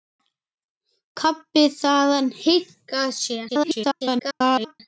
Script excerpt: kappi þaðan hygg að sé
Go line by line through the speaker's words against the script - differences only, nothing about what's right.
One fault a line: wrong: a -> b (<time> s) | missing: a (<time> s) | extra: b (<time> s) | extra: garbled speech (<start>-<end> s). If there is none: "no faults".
extra: garbled speech (3.5-4.8 s)